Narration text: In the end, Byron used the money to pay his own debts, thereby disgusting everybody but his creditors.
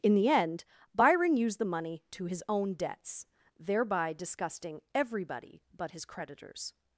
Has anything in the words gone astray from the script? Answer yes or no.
yes